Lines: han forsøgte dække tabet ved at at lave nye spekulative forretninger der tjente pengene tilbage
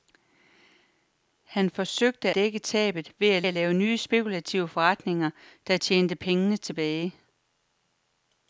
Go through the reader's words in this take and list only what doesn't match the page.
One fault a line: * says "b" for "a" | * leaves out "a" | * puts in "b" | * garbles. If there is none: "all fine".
all fine